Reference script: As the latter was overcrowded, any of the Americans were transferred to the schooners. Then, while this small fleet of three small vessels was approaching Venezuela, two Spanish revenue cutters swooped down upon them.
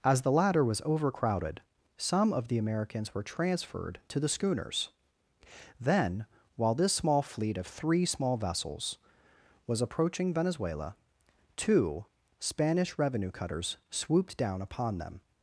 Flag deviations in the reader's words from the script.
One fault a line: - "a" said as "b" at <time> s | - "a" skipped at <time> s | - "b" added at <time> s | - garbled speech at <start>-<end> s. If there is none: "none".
- "any" said as "some" at 2.0 s